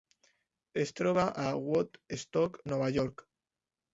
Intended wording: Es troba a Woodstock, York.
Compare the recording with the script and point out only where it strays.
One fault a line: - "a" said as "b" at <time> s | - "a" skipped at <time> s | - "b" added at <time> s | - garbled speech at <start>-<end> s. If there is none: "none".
- "Nova" added at 2.7 s